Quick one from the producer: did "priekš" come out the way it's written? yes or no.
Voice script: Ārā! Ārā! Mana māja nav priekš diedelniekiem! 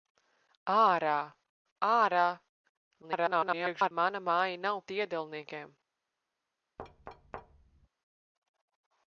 no